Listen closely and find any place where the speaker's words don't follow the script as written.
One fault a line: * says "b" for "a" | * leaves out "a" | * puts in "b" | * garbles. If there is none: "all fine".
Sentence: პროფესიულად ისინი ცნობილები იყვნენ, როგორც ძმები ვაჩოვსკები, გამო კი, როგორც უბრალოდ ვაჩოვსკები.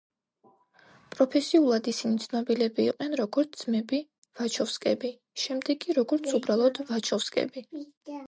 * says "შემდეგ" for "გამო"